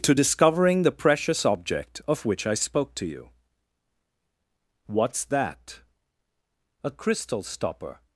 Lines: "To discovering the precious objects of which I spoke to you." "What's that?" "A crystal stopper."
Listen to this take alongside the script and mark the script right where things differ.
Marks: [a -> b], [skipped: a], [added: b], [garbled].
"To discovering the precious [objects -> object] of which I spoke to you." "What's that?" "A crystal stopper."